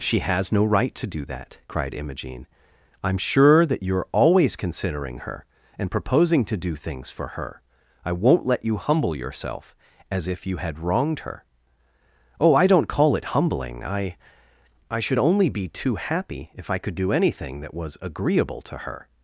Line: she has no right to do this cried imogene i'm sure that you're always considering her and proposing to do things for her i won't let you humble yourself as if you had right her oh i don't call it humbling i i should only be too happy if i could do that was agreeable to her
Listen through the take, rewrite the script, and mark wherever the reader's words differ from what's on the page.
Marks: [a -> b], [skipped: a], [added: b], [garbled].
she has no right to do [this -> that] cried imogene i'm sure that you're always considering her and proposing to do things for her i won't let you humble yourself as if you had [right -> wronged] her oh i don't call it humbling i i should only be too happy if i could do [added: anything] that was agreeable to her